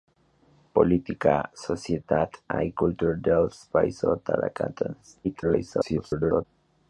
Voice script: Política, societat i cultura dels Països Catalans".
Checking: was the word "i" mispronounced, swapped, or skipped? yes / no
no